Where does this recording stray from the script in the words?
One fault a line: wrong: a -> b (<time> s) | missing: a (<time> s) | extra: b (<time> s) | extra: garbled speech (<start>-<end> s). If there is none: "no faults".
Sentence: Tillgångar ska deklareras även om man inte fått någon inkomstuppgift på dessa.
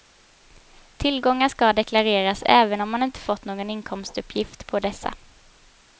no faults